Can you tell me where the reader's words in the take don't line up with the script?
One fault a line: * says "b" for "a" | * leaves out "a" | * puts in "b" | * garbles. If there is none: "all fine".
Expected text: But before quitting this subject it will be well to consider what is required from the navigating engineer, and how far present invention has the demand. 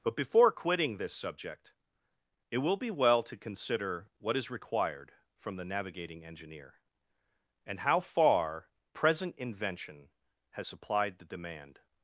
* puts in "supplied"